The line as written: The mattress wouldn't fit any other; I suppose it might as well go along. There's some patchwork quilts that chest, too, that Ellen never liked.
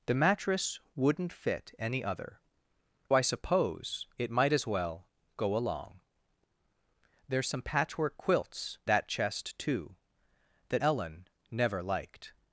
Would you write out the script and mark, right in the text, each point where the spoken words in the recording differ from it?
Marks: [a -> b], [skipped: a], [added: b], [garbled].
The mattress wouldn't fit any other; I suppose it might as well go along. There's some patchwork quilts that chest, too, that Ellen never liked.